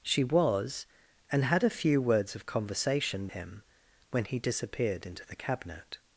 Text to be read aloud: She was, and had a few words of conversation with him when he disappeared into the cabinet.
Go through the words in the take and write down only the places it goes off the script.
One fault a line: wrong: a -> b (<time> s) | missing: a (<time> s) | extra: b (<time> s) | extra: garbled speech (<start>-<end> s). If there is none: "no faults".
missing: with (3.3 s)